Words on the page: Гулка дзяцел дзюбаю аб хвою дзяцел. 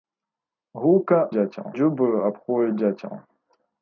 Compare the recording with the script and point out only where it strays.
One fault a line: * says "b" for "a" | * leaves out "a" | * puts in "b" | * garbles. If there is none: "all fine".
all fine